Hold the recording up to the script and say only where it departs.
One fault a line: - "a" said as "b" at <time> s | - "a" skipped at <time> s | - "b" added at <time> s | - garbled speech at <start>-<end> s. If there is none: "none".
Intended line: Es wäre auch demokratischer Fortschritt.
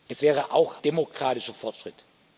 none